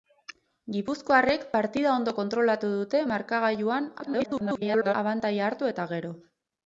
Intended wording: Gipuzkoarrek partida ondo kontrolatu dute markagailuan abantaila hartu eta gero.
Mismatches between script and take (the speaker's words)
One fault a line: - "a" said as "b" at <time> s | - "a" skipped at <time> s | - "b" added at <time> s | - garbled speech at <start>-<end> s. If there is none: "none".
- garbled speech at 4.0-4.9 s